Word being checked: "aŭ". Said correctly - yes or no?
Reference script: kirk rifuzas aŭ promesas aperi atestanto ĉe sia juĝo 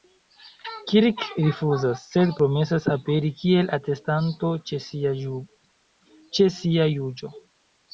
no